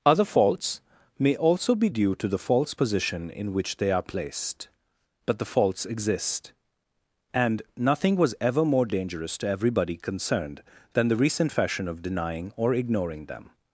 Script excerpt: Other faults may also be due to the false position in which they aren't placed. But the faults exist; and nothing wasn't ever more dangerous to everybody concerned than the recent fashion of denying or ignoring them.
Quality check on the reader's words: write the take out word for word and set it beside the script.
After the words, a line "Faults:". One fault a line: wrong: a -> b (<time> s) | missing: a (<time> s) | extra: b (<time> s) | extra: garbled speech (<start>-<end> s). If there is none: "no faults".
Other faults may also be due to the false position in which they are placed. But the faults exist; and nothing was ever more dangerous to everybody concerned than the recent fashion of denying or ignoring them.
Faults:
wrong: aren't -> are (3.9 s)
wrong: wasn't -> was (8.2 s)